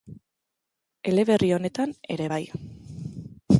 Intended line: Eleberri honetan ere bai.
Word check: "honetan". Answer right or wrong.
right